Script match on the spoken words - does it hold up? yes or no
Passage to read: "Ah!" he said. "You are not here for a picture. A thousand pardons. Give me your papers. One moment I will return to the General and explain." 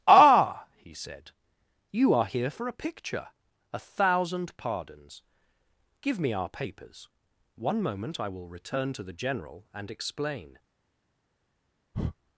no